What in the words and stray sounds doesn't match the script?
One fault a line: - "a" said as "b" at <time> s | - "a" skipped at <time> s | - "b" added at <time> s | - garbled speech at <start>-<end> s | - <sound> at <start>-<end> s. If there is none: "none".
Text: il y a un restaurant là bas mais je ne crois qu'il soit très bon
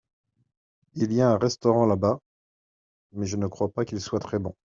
- "pas" added at 3.7 s